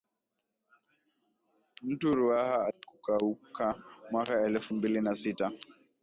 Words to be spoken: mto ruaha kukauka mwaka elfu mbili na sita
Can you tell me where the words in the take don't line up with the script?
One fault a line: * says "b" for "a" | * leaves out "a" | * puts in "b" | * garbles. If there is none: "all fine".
all fine